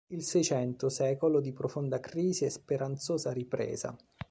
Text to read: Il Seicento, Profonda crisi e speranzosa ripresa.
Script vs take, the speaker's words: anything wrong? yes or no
yes